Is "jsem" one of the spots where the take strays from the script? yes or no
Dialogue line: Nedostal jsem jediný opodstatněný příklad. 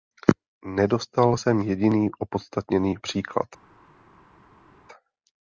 no